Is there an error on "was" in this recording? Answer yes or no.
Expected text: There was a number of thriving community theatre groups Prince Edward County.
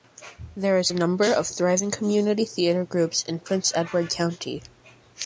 yes